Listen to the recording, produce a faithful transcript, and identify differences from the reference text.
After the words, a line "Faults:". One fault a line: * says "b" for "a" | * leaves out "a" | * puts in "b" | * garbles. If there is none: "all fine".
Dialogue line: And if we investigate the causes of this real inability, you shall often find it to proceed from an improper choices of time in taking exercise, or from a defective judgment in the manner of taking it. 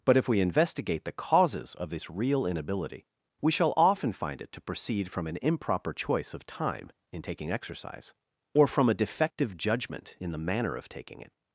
But if we investigate the causes of this real inability, we shall often find it to proceed from an improper choice of time in taking exercise, or from a defective judgment in the manner of taking it.
Faults:
* says "But" for "And"
* says "we" for "you"
* says "choice" for "choices"